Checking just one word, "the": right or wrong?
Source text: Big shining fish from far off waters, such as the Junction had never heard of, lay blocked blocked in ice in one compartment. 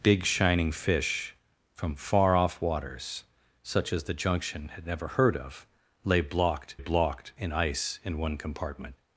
right